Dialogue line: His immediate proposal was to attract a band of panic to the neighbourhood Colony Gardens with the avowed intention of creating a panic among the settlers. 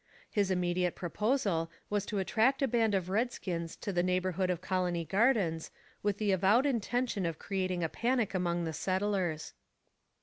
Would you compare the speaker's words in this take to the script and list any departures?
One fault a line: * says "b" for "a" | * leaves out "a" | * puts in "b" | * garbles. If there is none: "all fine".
* says "redskins" for "panic"
* puts in "of"